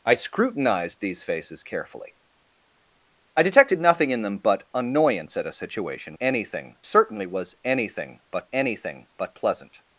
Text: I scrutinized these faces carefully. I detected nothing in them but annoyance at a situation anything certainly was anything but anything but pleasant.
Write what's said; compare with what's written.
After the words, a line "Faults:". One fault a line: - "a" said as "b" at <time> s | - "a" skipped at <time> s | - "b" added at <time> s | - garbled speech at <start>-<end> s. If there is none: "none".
I scrutinized these faces carefully. I detected nothing in them but annoyance at a situation anything certainly was anything but anything but pleasant.
Faults:
none